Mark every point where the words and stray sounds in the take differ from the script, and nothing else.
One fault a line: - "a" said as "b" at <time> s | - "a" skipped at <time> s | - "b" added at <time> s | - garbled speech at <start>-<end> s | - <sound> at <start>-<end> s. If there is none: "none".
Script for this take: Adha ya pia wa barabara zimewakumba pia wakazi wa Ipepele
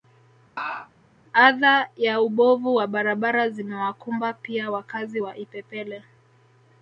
- laugh at 0.6-0.9 s
- "pia" said as "ubovu" at 2.2 s